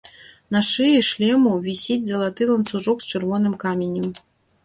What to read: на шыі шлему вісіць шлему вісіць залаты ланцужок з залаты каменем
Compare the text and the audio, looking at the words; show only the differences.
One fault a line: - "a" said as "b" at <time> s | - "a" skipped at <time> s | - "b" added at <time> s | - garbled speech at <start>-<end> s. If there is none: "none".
- "шлему вісіць" skipped at 2.0 s
- "залаты" said as "чырвоным" at 3.1 s